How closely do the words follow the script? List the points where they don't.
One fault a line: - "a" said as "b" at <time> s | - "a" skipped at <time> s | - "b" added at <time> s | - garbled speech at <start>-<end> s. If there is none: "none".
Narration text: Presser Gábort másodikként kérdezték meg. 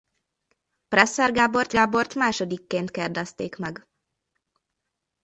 - "Gábort" added at 1.7 s